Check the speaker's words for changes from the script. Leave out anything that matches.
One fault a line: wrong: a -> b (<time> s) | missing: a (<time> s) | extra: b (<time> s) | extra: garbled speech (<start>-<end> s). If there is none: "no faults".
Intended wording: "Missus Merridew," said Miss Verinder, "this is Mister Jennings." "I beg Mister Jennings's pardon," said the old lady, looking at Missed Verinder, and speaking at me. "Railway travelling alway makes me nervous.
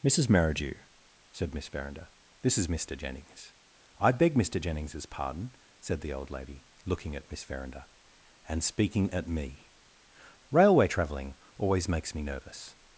wrong: Missed -> Miss (7.3 s)
wrong: alway -> always (11.6 s)